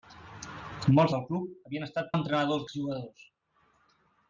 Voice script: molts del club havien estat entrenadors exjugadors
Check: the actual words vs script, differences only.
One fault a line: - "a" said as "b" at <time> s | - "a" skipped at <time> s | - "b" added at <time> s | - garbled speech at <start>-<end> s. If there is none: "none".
none